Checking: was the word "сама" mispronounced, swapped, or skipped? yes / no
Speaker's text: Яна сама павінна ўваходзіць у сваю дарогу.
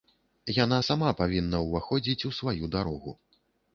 no